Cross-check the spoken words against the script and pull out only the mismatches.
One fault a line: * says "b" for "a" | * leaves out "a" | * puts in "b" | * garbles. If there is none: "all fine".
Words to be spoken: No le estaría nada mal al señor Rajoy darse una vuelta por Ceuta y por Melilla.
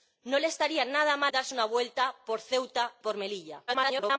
* leaves out "al señor Rajoy"
* leaves out "y"
* garbles